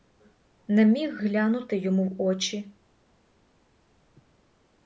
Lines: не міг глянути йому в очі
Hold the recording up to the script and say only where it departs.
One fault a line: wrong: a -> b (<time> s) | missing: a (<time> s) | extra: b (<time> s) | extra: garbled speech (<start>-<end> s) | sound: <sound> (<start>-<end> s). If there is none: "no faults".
no faults